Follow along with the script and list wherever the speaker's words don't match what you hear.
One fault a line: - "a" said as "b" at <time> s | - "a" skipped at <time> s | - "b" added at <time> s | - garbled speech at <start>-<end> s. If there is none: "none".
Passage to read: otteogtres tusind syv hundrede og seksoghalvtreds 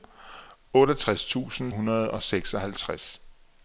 - "syv" skipped at 1.7 s